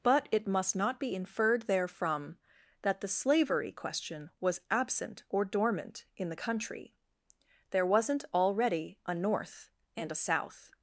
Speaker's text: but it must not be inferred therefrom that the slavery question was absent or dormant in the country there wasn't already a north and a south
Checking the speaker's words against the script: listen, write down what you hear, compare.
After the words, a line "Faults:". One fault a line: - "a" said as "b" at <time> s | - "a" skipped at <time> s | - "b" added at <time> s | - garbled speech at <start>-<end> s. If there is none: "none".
but it must not be inferred therefrom that the slavery question was absent or dormant in the country there wasn't already a north and a south
Faults:
none